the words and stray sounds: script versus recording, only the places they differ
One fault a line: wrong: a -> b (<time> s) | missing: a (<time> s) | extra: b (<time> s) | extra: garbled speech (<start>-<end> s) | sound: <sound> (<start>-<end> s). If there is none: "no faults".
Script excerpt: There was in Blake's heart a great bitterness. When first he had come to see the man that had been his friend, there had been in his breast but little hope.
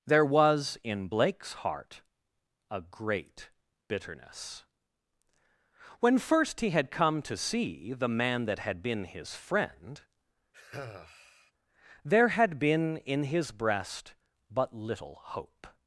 sound: sigh (10.5-11.5 s)